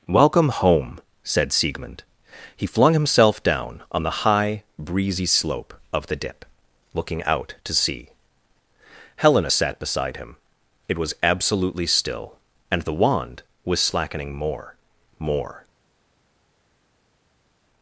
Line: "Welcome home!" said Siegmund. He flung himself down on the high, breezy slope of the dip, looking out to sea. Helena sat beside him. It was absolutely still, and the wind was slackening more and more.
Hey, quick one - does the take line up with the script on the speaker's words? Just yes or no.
no